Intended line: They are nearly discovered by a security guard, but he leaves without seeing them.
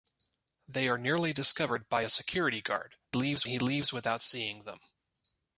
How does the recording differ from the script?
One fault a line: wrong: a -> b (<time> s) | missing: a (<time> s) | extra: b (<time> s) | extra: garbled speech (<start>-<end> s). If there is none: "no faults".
wrong: but -> leaves (3.1 s)